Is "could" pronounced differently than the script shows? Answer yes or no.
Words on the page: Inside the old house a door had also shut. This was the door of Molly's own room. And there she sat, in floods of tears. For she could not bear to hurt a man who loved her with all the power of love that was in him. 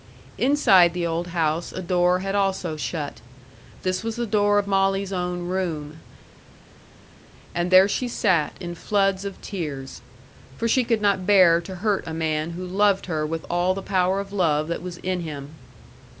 no